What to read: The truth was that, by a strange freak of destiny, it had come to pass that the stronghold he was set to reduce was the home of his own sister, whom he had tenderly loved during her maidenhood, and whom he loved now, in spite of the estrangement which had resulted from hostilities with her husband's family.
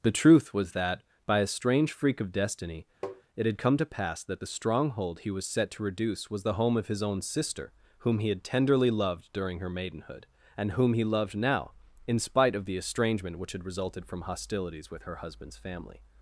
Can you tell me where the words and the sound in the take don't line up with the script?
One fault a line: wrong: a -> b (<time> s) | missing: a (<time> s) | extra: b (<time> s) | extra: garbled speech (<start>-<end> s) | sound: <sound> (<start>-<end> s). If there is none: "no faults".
sound: tap (3.0-3.2 s)